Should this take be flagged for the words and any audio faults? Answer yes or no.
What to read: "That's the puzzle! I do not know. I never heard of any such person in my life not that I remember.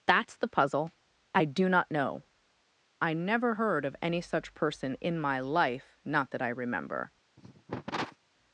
yes